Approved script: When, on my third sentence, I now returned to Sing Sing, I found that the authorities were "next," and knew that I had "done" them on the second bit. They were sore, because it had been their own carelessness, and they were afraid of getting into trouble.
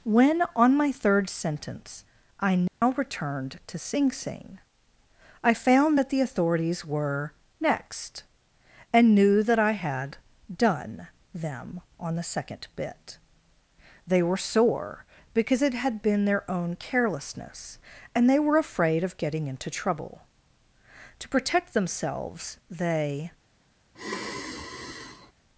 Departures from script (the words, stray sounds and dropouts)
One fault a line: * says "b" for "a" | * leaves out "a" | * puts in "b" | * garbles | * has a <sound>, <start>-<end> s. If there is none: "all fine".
* has a dropout, 2.7-2.8 s
* puts in "To protect themselves they"
* has a sigh, 23.9-25.3 s